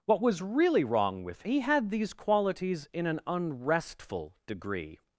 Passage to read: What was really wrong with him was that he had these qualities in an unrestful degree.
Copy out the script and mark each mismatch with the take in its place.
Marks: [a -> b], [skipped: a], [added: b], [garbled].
What was really wrong with [skipped: him was that] he had these qualities in an unrestful degree.